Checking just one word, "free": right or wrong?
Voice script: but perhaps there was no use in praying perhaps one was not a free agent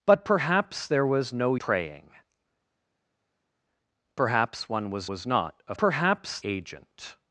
wrong